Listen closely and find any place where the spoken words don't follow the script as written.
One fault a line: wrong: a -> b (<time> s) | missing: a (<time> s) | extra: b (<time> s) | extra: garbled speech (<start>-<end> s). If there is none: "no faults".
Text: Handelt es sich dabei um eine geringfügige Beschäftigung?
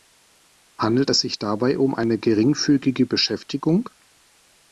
no faults